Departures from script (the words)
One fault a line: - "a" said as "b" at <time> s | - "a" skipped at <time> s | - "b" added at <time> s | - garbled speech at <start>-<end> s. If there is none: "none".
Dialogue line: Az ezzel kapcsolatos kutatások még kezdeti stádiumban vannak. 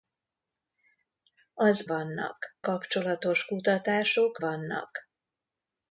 - "ezzel" said as "vannak" at 1.8 s
- "még kezdeti stádiumban" skipped at 4.4 s